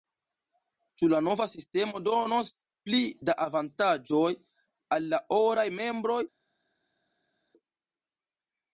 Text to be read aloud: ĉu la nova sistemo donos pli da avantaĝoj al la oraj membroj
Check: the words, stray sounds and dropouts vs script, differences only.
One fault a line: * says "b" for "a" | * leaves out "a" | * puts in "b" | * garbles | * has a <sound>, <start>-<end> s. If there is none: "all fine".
all fine